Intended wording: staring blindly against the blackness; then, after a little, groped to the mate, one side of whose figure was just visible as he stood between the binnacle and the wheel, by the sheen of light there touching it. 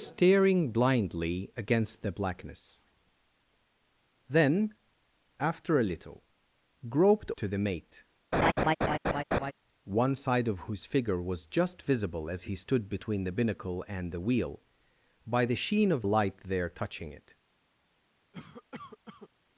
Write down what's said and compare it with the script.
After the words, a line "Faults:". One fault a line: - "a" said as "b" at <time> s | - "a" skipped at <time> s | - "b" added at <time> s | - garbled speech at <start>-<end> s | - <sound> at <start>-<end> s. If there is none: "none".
staring blindly against the blackness; then, after a little, groped to the mate, one side of whose figure was just visible as he stood between the binnacle and the wheel, by the sheen of light there touching it.
Faults:
- laugh at 8.3-9.5 s
- cough at 18.3-19.3 s